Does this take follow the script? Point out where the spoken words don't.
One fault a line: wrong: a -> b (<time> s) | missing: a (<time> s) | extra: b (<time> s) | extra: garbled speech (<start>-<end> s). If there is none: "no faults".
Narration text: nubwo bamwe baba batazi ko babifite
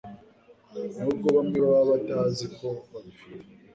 no faults